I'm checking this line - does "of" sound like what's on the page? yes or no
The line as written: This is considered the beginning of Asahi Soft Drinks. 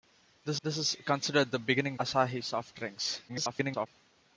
no